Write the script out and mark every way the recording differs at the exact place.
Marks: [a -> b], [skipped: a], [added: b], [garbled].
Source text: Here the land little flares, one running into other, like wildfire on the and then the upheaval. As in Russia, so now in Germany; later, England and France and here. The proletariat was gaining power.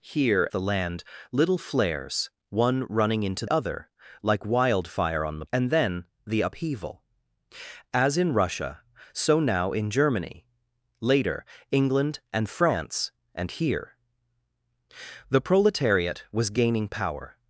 Here the land little flares, one running into other, like wildfire on the and then the upheaval. As in Russia, so now in Germany; later, England and France and here. The proletariat was gaining power.